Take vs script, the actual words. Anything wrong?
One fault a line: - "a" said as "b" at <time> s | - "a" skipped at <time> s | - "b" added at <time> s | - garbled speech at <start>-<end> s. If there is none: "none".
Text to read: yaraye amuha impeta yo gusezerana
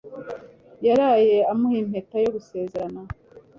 none